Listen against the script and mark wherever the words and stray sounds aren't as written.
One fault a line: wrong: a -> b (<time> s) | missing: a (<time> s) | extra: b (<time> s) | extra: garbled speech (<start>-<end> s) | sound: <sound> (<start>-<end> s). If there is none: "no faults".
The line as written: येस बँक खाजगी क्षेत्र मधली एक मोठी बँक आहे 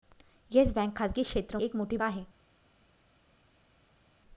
missing: मधली (1.6 s)
missing: बँक (2.0 s)